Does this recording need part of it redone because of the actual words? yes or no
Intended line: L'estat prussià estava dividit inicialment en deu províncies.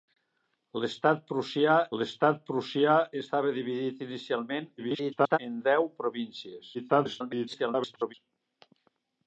yes